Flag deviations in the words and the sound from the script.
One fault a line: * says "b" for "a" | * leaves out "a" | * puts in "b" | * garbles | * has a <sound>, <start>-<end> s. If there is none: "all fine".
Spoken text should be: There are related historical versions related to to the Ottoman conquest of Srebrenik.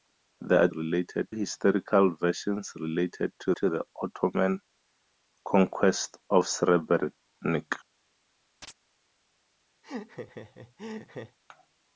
* has a chirp, 8.6-8.7 s
* has a laugh, 9.8-11.4 s